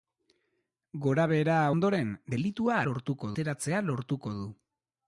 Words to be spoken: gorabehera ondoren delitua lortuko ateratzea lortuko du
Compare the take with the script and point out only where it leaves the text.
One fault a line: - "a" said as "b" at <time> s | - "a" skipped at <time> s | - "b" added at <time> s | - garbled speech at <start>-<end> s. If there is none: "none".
none